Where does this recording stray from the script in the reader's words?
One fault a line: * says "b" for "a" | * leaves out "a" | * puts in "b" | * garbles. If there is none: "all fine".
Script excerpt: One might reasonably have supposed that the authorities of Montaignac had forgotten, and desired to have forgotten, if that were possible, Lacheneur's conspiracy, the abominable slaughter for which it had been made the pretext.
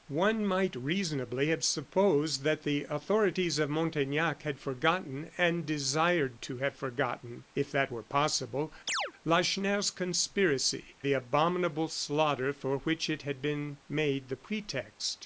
all fine